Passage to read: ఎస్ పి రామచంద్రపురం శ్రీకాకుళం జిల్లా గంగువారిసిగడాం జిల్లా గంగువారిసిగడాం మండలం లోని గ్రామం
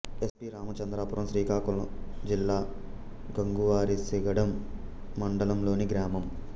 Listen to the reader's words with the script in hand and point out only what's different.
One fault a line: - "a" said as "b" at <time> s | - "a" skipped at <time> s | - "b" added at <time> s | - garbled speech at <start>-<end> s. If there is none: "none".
- "జిల్లా గంగువారిసిగడాం" skipped at 4.5 s